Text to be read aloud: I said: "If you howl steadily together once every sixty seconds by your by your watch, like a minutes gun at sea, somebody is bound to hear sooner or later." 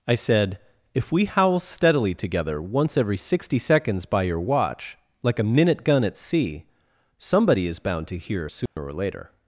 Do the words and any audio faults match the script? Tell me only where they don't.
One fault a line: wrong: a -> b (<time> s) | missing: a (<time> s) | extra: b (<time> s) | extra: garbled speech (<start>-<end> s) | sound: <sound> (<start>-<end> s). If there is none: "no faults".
wrong: you -> we (1.1 s)
missing: by your (4.4 s)
wrong: minutes -> minute (5.4 s)
sound: dropout (8.7-8.8 s)